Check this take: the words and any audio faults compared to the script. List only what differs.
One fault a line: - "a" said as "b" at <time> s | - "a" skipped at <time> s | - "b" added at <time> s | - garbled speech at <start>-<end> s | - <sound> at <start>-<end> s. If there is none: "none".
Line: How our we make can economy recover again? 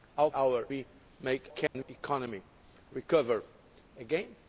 - dropout at 1.7-1.8 s